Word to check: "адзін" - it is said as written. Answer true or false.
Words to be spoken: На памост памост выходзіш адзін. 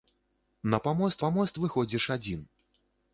true